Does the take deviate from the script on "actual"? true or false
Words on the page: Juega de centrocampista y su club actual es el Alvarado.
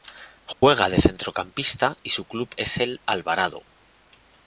true